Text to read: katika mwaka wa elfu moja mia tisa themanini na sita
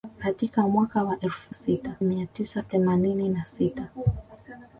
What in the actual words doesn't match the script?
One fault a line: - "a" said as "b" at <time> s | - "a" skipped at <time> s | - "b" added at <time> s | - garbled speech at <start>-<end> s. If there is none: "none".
- "moja" said as "sita" at 1.5 s